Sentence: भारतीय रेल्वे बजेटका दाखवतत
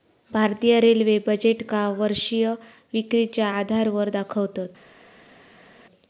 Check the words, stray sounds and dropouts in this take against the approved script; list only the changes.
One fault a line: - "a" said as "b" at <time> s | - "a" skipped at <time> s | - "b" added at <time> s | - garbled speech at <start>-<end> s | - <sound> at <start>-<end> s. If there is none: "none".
- "वर्षीय विक्रीच्या आधारावर" added at 2.0 s